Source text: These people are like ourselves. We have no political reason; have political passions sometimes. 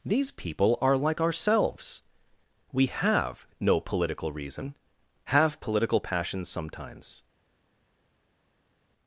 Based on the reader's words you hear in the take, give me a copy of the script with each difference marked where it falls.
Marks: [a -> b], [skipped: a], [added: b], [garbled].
These people are like ourselves. We have no political reason; have political passions sometimes.